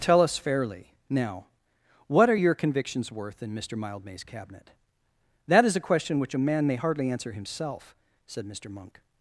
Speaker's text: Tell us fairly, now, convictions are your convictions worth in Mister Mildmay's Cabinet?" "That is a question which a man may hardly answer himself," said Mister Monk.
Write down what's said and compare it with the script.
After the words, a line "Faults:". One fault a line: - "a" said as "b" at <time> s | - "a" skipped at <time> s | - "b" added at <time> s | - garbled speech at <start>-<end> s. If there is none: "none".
Tell us fairly, now, what are your convictions worth in Mister Mildmay's Cabinet?" "That is a question which a man may hardly answer himself," said Mister Monk.
Faults:
- "convictions" said as "what" at 2.1 s